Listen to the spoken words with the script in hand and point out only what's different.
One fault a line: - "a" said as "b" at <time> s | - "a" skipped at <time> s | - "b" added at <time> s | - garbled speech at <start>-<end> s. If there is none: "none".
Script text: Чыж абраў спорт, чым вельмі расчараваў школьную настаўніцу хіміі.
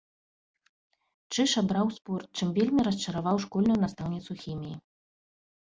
none